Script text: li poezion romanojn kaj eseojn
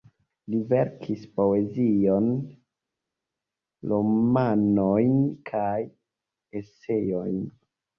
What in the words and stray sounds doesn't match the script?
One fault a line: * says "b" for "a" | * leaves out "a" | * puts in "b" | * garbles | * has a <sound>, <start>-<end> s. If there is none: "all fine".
* puts in "verkis"